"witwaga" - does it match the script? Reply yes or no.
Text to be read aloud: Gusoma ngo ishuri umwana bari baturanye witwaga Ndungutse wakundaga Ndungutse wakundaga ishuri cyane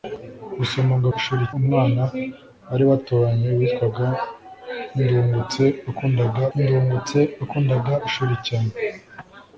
yes